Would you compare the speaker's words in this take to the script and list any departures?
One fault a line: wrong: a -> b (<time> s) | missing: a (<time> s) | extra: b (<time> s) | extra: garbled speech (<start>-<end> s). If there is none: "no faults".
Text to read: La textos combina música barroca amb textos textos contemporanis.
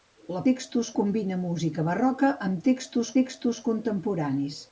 no faults